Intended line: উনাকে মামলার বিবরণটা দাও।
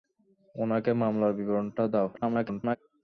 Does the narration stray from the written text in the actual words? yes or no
yes